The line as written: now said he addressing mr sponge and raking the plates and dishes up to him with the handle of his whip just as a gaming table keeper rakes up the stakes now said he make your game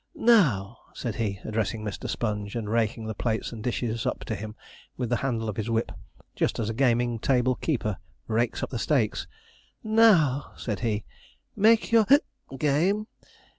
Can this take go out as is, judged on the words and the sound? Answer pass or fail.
pass